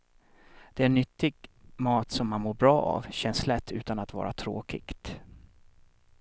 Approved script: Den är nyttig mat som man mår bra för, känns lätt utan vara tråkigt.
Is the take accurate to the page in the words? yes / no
no